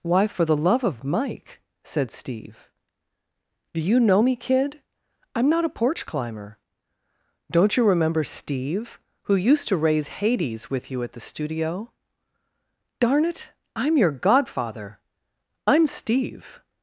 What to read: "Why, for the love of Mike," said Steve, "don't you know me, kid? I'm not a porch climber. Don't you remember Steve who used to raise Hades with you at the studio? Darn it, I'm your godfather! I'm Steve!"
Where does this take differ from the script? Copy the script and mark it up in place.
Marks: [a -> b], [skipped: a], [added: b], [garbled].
"Why, for the love of Mike," said Steve, ["don't -> do] you know me, kid? I'm not a porch climber. Don't you remember Steve who used to raise Hades with you at the studio? Darn it, I'm your godfather! I'm Steve!"